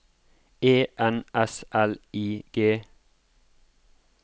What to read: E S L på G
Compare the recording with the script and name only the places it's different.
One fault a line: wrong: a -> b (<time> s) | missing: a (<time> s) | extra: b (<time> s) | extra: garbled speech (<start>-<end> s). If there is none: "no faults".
extra: N (1.0 s)
wrong: på -> I (2.1 s)